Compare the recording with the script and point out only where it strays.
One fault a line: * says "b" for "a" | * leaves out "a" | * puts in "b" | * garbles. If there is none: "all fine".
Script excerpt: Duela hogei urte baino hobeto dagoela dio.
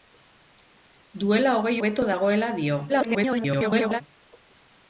* leaves out "urte baino"
* garbles